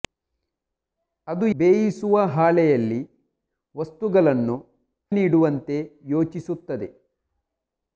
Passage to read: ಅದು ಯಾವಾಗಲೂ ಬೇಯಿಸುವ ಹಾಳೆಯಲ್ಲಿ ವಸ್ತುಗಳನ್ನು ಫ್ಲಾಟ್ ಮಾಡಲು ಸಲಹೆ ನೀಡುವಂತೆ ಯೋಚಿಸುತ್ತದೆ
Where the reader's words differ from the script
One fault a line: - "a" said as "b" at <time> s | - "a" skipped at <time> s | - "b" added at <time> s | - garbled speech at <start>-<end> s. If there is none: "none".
- "ಯಾವಾಗಲೂ" skipped at 1.4 s
- "ಫ್ಲಾಟ್ ಮಾಡಲು ಸಲಹೆ" skipped at 4.6 s